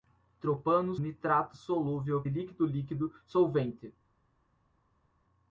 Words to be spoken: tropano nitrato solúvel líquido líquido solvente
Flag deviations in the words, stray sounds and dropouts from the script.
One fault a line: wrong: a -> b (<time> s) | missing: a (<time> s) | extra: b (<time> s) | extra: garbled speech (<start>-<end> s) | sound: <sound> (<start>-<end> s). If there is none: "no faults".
no faults